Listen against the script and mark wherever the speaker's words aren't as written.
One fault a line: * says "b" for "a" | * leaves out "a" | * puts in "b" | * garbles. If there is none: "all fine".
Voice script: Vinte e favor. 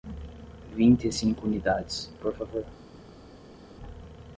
* puts in "cinco unidades por"